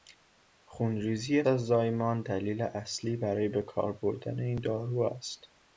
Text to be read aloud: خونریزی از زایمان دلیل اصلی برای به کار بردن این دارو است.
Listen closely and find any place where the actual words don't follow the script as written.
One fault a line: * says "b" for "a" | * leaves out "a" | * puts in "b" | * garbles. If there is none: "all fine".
all fine